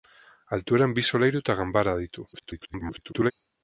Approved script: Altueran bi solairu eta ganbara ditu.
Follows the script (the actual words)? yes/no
no